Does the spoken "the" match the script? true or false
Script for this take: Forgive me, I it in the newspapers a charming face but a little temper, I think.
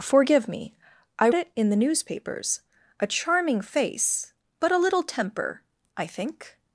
true